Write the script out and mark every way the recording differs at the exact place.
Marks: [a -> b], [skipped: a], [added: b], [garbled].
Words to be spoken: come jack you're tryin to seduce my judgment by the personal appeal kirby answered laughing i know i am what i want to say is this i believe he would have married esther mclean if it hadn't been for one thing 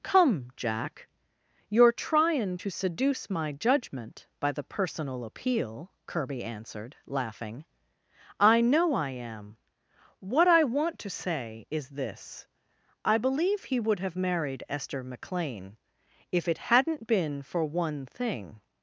come jack you're tryin to seduce my judgment by the personal appeal kirby answered laughing i know i am what i want to say is this i believe he would have married esther mclean if it hadn't been for one thing